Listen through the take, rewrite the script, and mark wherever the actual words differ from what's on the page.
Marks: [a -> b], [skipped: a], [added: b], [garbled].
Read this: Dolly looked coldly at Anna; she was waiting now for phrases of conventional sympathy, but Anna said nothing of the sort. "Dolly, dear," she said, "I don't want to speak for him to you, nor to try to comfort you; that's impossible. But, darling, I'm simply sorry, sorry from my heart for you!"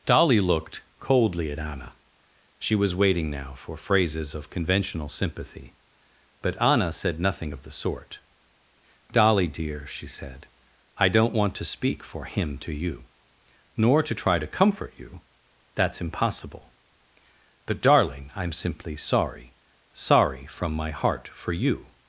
Dolly looked coldly at Anna; she was waiting now for phrases of conventional sympathy, but Anna said nothing of the sort. "Dolly, dear," she said, "I don't want to speak for him to you, nor to try to comfort you; that's impossible. But, darling, I'm simply sorry, sorry from my heart for you!"